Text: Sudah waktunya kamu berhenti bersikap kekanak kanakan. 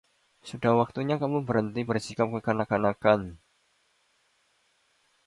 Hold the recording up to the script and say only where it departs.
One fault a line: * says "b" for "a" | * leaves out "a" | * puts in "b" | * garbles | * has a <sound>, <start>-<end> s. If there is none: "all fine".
all fine